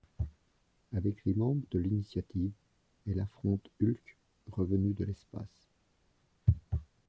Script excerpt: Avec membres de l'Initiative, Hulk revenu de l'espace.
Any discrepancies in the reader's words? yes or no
yes